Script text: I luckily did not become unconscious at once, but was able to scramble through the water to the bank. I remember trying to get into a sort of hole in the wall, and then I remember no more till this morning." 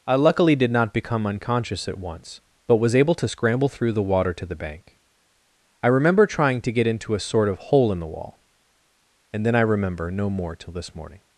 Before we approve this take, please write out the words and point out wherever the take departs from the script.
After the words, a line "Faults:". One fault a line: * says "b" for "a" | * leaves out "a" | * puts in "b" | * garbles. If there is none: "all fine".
I luckily did not become unconscious at once, but was able to scramble through the water to the bank. I remember trying to get into a sort of hole in the wall, and then I remember no more till this morning."
Faults:
all fine